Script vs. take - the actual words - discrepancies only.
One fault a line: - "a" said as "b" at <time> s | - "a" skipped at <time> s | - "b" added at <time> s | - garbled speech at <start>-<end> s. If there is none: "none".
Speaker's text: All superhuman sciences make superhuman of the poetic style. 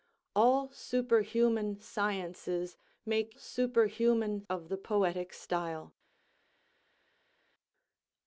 none